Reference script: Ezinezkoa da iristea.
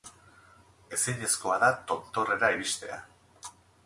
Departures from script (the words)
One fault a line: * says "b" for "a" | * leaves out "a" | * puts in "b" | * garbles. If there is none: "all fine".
* puts in "tontorrera"